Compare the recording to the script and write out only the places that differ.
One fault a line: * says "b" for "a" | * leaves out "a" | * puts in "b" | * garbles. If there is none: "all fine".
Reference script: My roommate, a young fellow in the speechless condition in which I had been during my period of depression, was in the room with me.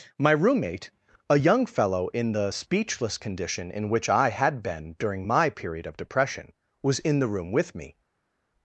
all fine